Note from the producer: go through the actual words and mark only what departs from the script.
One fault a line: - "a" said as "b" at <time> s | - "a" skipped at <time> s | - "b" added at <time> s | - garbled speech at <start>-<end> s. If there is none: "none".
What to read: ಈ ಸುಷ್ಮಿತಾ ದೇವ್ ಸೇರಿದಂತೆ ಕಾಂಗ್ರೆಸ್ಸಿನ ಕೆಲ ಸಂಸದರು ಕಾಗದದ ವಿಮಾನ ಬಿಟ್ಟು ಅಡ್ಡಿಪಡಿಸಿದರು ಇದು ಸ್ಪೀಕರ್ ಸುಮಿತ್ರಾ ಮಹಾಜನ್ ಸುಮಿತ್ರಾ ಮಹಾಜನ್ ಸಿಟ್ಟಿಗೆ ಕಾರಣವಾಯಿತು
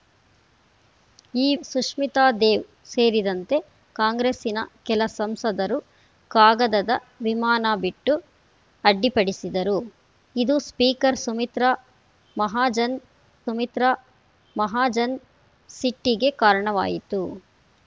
none